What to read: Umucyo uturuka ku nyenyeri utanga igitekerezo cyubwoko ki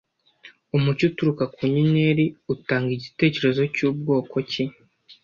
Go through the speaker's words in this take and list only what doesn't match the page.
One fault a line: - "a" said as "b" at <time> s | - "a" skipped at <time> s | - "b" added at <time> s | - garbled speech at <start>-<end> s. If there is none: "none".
none